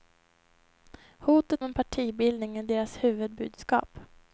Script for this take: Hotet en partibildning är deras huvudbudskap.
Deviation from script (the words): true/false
false